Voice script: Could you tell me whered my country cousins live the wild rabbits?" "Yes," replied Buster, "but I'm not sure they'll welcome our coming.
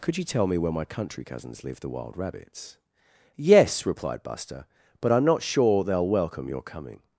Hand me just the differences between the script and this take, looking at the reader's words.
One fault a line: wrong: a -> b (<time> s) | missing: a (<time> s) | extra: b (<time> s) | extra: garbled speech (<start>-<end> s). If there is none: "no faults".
wrong: whered -> where (0.6 s)
wrong: our -> your (6.5 s)